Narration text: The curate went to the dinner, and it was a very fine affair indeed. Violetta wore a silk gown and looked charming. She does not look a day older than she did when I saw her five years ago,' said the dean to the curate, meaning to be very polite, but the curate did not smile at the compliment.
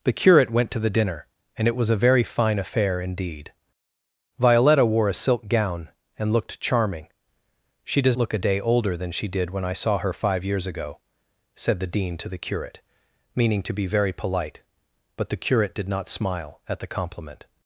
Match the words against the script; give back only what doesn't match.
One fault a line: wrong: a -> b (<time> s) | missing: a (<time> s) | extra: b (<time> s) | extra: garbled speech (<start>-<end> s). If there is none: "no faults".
missing: not (8.2 s)